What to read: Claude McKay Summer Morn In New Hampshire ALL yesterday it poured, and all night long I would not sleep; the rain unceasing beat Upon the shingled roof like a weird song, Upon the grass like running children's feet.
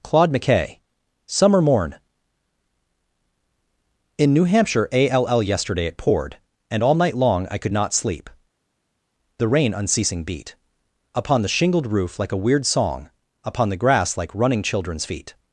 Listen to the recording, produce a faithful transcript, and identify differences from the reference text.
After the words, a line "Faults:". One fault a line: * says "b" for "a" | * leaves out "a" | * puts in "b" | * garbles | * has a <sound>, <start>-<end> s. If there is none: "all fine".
Claude McKay Summer Morn In New Hampshire ALL yesterday it poured, and all night long I could not sleep; the rain unceasing beat Upon the shingled roof like a weird song, Upon the grass like running children's feet.
Faults:
* says "could" for "would"